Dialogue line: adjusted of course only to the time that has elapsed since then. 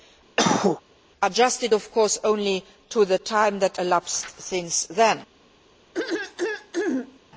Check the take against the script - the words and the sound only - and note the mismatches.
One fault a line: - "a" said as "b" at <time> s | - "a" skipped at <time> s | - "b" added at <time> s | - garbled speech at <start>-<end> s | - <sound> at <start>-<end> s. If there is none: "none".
- cough at 0.4-0.8 s
- "has" skipped at 3.8 s
- throat clearing at 5.9-7.2 s